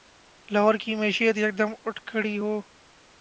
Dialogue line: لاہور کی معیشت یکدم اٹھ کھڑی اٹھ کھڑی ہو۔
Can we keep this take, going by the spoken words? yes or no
no